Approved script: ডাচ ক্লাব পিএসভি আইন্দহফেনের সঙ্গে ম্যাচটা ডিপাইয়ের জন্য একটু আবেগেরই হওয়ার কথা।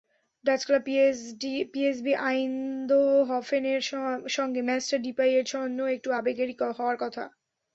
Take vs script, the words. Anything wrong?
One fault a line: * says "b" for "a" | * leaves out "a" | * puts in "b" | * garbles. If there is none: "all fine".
all fine